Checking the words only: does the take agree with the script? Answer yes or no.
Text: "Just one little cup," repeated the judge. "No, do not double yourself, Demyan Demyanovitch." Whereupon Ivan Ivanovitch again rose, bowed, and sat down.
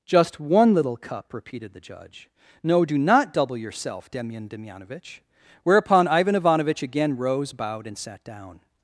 yes